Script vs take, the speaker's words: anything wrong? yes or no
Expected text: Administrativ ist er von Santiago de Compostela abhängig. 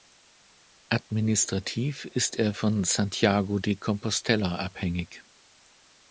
no